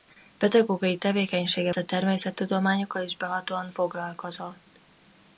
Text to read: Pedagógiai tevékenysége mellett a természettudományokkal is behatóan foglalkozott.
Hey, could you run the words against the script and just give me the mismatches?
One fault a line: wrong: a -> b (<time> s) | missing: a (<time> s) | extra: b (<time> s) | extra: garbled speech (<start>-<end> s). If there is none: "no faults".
missing: mellett (1.7 s)